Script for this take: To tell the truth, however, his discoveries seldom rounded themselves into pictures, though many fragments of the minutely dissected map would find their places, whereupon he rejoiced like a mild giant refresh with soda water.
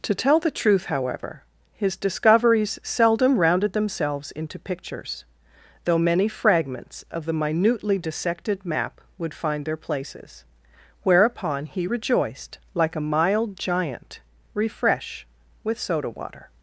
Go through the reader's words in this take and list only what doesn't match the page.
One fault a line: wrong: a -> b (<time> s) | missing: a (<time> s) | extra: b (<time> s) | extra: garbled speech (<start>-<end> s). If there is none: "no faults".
no faults